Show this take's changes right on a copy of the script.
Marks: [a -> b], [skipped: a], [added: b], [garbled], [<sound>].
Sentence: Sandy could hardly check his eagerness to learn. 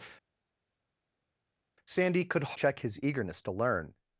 Sandy could [skipped: hardly] check his eagerness to learn.